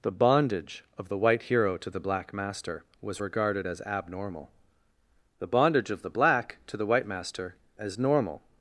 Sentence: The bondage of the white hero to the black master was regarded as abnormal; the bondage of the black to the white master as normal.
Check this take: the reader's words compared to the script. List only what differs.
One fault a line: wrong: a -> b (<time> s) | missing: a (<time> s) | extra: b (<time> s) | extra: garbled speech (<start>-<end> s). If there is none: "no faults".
no faults